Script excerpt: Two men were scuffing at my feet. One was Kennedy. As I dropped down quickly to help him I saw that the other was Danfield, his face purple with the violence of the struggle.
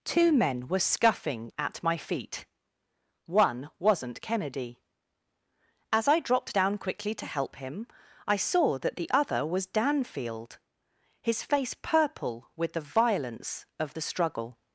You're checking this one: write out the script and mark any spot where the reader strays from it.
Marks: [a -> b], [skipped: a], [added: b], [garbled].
Two men were scuffing at my feet. One [was -> wasn't] Kennedy. As I dropped down quickly to help him I saw that the other was Danfield, his face purple with the violence of the struggle.